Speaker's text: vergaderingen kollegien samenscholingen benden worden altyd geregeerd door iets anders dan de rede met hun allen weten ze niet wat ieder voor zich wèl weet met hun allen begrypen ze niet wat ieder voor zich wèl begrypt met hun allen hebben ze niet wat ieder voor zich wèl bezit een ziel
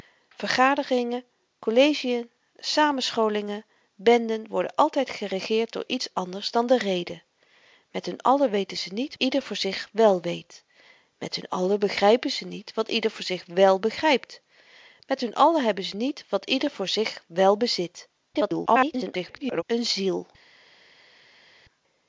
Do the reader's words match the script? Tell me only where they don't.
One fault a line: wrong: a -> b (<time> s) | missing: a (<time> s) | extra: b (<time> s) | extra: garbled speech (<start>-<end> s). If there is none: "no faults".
missing: wat (9.2 s)
extra: garbled speech (18.3-19.6 s)